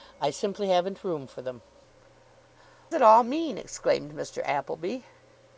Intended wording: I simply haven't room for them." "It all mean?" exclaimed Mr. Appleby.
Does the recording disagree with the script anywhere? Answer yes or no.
no